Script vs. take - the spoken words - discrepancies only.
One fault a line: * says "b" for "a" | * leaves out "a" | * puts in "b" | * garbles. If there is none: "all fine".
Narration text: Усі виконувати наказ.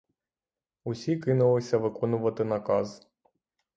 * puts in "кинулися"